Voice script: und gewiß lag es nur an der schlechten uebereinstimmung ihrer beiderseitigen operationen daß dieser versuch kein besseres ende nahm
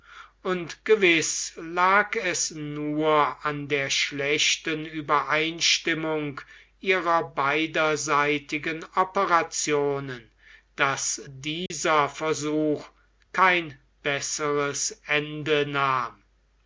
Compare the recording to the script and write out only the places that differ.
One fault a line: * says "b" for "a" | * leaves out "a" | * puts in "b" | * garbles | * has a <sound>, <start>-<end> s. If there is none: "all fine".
* has a dropout, 11.7-11.7 s